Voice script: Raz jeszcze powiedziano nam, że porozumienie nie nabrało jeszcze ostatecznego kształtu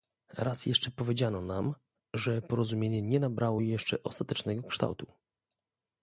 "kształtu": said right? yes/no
yes